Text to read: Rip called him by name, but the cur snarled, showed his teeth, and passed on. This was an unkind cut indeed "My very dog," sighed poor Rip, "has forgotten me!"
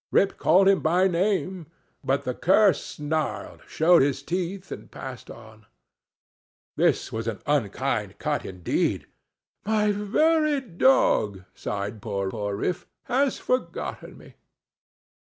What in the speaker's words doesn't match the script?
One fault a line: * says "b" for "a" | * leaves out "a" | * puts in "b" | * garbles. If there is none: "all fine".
* puts in "poor"